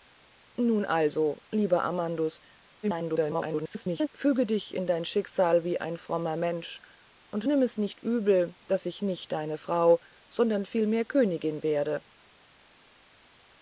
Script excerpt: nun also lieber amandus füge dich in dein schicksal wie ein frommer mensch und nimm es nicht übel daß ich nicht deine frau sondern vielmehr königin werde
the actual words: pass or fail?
fail